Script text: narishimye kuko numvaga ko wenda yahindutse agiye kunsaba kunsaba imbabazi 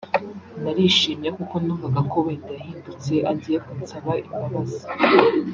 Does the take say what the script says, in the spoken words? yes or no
no